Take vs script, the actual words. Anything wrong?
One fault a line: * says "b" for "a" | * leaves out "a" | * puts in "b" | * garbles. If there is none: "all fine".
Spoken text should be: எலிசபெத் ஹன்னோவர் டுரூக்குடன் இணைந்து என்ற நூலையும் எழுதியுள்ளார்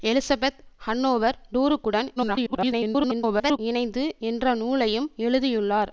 * garbles